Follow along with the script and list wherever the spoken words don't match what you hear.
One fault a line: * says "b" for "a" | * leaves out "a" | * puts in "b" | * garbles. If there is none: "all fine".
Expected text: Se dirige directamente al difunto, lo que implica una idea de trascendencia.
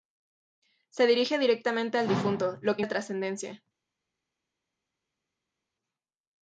* leaves out "implica una idea"